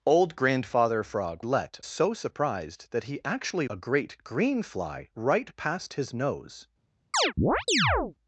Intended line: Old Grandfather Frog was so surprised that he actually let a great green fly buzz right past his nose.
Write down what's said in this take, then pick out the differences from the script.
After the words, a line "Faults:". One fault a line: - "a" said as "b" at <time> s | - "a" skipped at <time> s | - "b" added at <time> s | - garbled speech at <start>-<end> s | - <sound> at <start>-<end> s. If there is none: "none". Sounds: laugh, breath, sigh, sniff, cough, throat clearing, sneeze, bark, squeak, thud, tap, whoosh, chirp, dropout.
Old Grandfather Frog let so surprised that he actually a great green fly right past his nose.
Faults:
- "was" said as "let" at 1.4 s
- "let" skipped at 3.7 s
- "buzz" skipped at 5.1 s
- chirp at 7.1-8.1 s